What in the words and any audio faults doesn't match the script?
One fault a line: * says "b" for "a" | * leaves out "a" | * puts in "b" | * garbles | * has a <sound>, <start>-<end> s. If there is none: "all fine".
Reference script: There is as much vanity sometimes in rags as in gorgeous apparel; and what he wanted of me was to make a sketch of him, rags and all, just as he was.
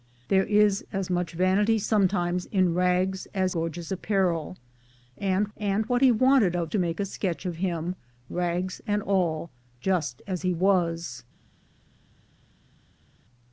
* leaves out "in"
* puts in "and"
* leaves out "me was"